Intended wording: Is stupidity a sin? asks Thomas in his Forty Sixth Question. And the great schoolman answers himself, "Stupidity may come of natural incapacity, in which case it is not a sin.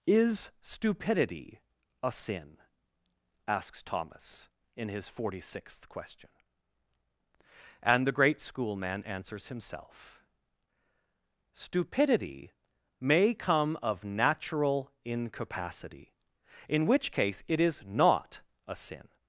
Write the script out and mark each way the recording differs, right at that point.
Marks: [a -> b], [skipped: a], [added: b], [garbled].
Is stupidity a sin? asks Thomas in his Forty Sixth Question. And the great schoolman answers himself, "Stupidity may come of natural incapacity, in which case it is not a sin.